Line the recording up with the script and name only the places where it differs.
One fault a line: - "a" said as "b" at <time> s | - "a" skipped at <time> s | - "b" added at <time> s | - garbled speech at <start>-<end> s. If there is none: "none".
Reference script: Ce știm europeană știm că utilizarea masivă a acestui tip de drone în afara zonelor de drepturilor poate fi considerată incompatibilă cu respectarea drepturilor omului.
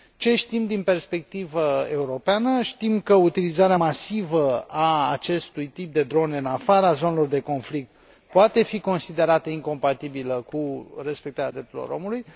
- "din perspectivă" added at 0.7 s
- "drepturilor" said as "conflict" at 7.4 s